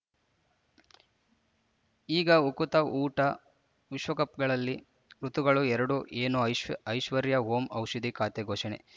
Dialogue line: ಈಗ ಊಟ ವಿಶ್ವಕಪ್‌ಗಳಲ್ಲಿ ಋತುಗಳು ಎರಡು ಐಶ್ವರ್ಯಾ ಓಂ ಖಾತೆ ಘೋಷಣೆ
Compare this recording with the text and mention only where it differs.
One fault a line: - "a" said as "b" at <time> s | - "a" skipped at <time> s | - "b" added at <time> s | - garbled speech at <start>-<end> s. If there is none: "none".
- "ಉಕುತ" added at 2.5 s
- "ಏನು ಐಶ್" added at 6.2 s
- "ಔಷಧಿ" added at 7.7 s